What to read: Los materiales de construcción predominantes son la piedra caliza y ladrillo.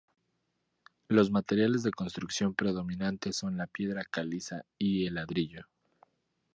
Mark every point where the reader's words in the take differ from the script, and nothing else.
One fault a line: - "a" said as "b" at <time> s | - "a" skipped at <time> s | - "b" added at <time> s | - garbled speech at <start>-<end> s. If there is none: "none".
- "el" added at 5.0 s